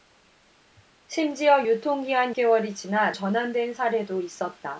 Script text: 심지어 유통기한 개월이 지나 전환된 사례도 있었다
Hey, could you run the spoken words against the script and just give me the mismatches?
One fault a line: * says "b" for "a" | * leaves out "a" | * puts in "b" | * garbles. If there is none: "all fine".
all fine